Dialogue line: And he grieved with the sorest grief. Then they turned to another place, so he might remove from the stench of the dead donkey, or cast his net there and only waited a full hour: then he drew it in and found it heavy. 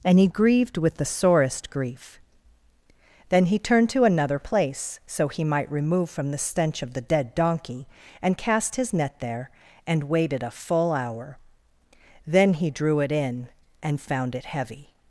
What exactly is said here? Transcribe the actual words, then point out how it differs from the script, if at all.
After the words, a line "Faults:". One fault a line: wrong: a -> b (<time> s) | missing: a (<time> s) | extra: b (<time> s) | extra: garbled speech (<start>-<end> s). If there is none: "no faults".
And he grieved with the sorest grief. Then he turned to another place, so he might remove from the stench of the dead donkey, and cast his net there and waited a full hour: then he drew it in and found it heavy.
Faults:
wrong: they -> he (3.5 s)
wrong: or -> and (8.2 s)
missing: only (10.0 s)